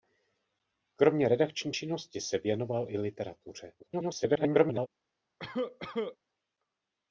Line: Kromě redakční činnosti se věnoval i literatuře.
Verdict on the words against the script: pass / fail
fail